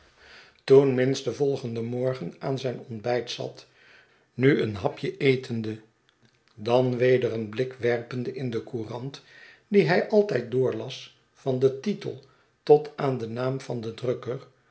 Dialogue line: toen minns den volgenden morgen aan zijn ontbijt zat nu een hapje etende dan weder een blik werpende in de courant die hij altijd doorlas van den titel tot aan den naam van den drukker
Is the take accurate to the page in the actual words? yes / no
yes